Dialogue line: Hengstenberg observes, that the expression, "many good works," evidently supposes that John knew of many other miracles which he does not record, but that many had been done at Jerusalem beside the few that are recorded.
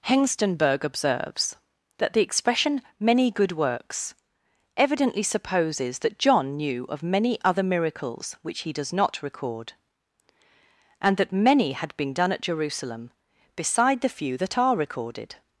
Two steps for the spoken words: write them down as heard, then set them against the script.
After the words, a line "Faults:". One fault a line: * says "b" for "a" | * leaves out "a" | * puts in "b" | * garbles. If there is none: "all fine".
Hengstenberg observes, that the expression, "many good works," evidently supposes that John knew of many other miracles which he does not record, and that many had been done at Jerusalem beside the few that are recorded.
Faults:
* says "and" for "but"